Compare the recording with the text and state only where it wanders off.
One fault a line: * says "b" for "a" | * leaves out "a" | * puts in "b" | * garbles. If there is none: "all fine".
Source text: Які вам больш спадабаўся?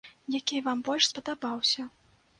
all fine